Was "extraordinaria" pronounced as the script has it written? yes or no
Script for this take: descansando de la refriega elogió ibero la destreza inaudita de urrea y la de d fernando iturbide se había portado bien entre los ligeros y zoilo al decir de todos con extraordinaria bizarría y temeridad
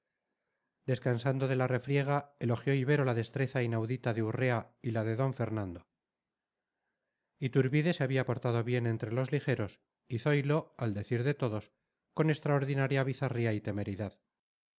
yes